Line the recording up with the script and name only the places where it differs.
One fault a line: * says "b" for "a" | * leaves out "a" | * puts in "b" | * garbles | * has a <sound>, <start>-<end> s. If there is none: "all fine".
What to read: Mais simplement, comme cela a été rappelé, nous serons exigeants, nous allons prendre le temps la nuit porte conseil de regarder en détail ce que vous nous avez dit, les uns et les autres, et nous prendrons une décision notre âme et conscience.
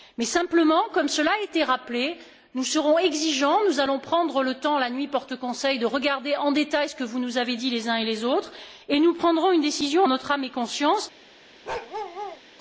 * has a bark, 11.6-12.4 s